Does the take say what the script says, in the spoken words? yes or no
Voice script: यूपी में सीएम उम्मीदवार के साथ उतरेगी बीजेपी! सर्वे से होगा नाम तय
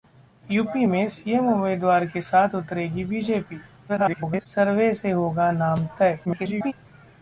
no